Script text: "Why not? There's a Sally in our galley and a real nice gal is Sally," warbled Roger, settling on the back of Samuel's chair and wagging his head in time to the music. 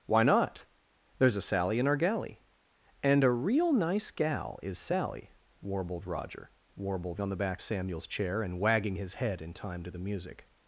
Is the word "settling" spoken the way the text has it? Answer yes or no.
no